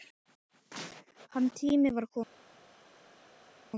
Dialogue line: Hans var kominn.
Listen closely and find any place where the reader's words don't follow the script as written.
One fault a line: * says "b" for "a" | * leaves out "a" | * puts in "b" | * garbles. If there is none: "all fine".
* puts in "tími"